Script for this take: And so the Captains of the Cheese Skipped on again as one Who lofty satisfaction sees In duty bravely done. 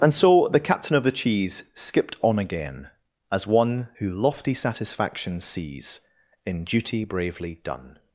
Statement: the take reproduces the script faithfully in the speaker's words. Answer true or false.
false